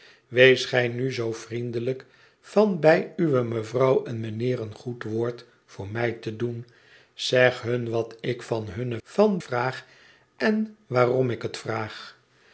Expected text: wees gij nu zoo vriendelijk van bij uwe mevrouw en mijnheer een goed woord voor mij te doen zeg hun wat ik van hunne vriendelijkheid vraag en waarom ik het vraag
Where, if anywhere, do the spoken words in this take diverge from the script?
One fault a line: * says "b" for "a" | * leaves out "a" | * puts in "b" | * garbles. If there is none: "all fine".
* says "van" for "vriendelijkheid"